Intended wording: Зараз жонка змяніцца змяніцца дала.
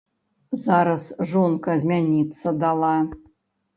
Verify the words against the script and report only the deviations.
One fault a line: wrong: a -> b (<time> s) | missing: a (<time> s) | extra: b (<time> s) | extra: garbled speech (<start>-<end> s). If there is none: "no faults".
missing: змяніцца (2.6 s)